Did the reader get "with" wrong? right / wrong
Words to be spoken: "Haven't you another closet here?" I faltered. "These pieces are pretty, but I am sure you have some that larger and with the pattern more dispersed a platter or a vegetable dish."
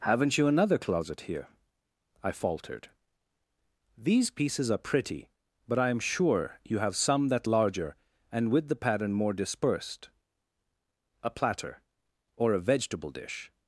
right